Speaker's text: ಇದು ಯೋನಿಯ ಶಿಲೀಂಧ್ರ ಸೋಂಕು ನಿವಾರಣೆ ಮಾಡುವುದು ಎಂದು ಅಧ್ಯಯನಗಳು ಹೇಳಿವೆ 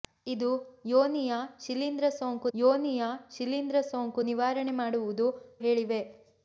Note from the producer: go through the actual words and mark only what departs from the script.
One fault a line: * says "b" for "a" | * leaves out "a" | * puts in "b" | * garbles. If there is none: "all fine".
* puts in "ಯೋನಿಯ ಶಿಲೀಂಧ್ರ ಸೋಂಕು"
* leaves out "ಎಂದು ಅಧ್ಯಯನಗಳು"